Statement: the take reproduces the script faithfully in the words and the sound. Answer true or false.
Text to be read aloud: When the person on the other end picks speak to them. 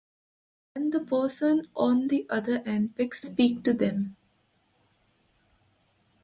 true